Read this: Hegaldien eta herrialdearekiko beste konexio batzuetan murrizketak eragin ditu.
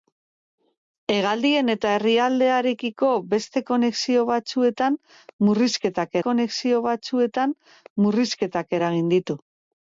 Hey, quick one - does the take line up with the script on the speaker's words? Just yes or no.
no